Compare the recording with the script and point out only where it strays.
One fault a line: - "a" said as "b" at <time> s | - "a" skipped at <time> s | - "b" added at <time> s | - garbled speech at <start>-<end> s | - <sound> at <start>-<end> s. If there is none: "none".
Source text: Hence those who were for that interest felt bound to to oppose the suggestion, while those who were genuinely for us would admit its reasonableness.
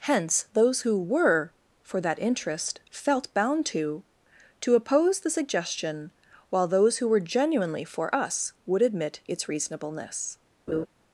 - laugh at 10.7-10.9 s